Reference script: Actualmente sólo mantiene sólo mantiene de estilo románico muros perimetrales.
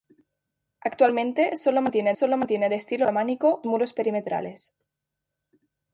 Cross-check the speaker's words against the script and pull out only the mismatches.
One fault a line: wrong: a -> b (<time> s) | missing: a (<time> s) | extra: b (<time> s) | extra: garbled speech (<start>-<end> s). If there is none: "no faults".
no faults